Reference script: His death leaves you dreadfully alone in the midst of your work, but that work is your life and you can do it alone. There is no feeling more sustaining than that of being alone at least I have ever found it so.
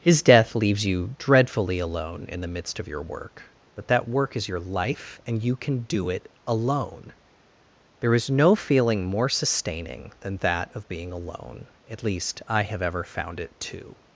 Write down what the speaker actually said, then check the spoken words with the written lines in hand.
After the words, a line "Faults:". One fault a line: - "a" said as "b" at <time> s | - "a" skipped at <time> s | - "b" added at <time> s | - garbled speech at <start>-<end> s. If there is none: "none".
His death leaves you dreadfully alone in the midst of your work, but that work is your life and you can do it alone. There is no feeling more sustaining than that of being alone at least I have ever found it too.
Faults:
- "so" said as "too" at 13.6 s